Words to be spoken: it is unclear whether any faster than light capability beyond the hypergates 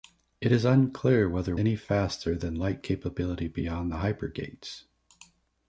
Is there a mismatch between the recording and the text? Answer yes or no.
no